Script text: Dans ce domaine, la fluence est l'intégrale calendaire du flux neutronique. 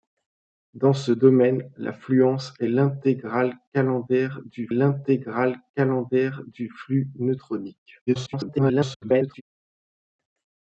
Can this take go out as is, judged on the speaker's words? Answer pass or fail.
fail